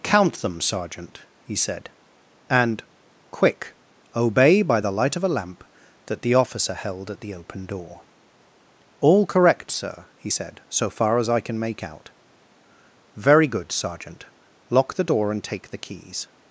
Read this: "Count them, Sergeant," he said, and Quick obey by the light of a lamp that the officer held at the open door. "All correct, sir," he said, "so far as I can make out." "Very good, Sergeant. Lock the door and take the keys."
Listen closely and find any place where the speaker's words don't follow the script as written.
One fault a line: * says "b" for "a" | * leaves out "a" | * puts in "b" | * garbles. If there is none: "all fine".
all fine